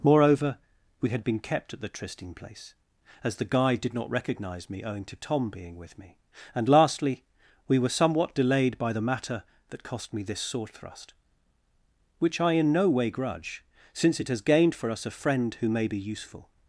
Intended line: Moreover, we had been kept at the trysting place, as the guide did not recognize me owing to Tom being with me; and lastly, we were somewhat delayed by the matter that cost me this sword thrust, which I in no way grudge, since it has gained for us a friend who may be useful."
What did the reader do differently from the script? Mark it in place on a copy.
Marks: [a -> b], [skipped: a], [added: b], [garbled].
Moreover, we had been kept at the trysting place, as the guide did not recognize me owing to Tom being with me; and lastly, we were somewhat delayed by the matter that cost me this sword thrust, which I in no way grudge, since it has gained for us a friend who may be useful."